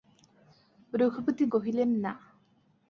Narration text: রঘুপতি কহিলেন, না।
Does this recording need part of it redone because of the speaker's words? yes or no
no